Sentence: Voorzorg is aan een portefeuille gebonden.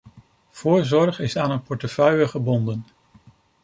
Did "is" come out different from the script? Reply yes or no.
no